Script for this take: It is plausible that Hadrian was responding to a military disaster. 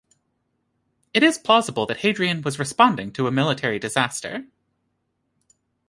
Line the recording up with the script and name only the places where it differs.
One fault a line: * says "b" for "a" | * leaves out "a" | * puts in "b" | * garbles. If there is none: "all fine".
all fine